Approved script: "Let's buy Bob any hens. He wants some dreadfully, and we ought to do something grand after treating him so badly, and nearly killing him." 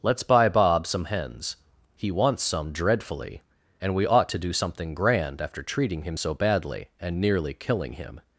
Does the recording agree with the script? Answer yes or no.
no